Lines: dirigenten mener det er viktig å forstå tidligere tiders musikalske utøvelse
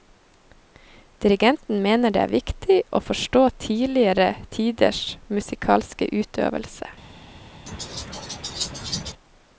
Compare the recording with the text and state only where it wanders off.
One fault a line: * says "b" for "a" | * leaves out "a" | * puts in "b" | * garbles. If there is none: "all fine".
all fine